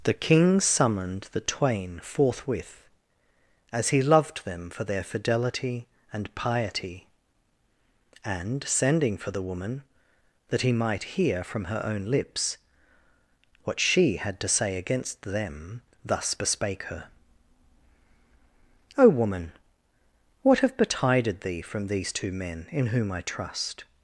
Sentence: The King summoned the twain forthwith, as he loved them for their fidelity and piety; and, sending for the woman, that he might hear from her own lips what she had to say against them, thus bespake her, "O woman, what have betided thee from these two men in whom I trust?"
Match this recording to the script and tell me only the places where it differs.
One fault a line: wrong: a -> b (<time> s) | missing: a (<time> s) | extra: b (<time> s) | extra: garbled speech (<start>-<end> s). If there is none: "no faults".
no faults